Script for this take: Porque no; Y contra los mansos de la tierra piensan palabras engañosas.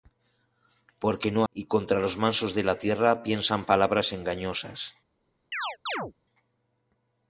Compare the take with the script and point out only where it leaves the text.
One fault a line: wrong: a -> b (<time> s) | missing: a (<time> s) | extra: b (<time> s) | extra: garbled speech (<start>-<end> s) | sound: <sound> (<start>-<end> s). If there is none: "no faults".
sound: chirp (5.5-6.1 s)